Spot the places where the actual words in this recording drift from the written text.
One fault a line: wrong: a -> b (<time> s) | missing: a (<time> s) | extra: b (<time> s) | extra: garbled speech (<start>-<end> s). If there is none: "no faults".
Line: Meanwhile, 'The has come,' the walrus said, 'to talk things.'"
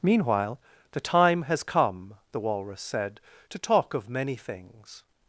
extra: time (1.0 s)
extra: of many (3.9 s)